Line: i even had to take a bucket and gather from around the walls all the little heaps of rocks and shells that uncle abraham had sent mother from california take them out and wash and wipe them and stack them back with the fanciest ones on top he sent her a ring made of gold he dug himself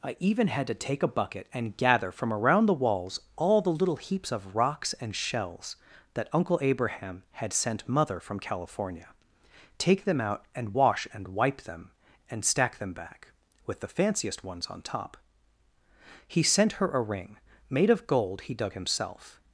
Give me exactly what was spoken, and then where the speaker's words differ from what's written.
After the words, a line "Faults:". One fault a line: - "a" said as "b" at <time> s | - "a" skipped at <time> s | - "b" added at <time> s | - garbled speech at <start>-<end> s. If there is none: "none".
i even had to take a bucket and gather from around the walls all the little heaps of rocks and shells that uncle abraham had sent mother from california take them out and wash and wipe them and stack them back with the fanciest ones on top he sent her a ring made of gold he dug himself
Faults:
none